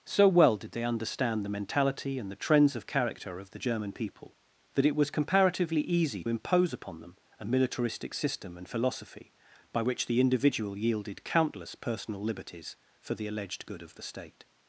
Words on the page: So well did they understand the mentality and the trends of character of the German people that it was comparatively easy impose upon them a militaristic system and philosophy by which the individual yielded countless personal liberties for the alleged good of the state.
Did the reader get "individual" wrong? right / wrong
right